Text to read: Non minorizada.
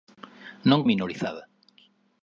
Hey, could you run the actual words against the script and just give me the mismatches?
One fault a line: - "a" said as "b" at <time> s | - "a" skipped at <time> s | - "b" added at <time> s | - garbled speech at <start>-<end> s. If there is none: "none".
none